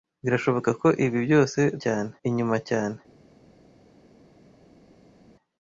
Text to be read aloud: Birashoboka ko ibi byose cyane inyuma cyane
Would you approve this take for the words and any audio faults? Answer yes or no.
yes